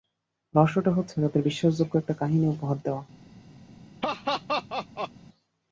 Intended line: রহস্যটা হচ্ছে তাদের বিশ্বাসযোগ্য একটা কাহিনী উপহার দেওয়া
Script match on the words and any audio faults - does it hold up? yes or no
no